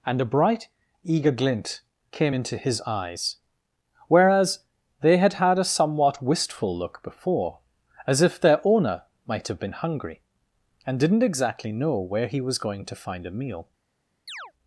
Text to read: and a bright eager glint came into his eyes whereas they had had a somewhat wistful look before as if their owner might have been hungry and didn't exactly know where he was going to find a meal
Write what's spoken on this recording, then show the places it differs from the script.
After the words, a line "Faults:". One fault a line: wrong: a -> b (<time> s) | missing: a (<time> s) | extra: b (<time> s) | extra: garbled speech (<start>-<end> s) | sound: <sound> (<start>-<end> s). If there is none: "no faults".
and a bright eager glint came into his eyes whereas they had had a somewhat wistful look before as if their owner might have been hungry and didn't exactly know where he was going to find a meal
Faults:
sound: chirp (14.3-14.5 s)